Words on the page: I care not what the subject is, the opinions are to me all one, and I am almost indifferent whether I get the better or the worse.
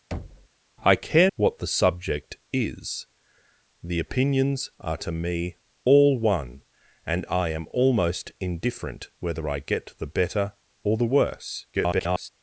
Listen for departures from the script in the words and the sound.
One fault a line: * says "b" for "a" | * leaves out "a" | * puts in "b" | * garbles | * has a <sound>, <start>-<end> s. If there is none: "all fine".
* has a thud, 0.1-0.5 s
* leaves out "not"
* garbles